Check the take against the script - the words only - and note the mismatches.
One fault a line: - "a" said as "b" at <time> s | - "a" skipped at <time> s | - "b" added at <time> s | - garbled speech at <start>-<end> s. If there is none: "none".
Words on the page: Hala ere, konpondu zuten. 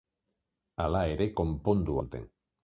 none